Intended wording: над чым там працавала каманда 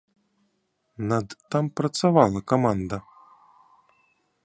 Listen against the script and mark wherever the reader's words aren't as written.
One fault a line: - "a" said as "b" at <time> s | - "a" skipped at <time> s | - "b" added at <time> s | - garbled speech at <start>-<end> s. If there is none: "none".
- "чым" skipped at 1.3 s